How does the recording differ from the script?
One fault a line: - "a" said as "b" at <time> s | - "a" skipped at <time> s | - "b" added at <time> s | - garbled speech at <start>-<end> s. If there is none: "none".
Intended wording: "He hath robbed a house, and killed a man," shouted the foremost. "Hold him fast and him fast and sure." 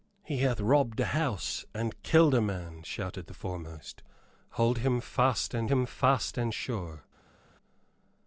none